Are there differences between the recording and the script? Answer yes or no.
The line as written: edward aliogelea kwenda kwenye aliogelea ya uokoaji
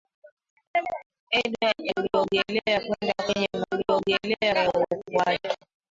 no